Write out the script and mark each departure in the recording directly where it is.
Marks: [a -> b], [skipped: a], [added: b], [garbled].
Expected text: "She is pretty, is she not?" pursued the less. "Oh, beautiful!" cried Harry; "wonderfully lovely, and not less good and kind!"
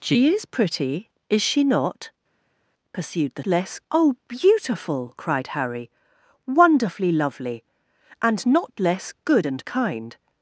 "She is pretty, is she not?" pursued the less. "Oh, beautiful!" cried Harry; "wonderfully lovely, and not less good and kind!"